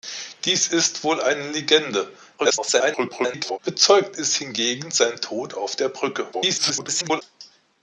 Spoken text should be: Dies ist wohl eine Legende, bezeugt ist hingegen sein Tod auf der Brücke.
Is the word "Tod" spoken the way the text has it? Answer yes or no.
yes